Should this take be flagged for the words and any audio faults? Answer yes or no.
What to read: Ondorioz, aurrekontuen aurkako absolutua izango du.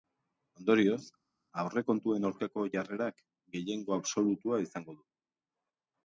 yes